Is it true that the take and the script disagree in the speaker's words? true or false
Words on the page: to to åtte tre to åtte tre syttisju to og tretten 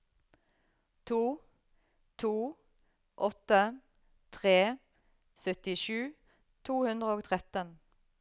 true